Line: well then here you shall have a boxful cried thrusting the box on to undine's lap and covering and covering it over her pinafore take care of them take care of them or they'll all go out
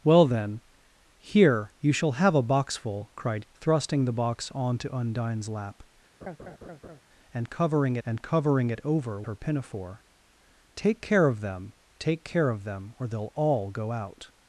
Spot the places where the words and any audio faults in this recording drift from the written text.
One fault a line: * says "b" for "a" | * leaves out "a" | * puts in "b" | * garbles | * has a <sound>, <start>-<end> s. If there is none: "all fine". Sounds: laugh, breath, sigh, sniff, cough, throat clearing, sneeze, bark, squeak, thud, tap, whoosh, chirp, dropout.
* has a laugh, 6.2-7.0 s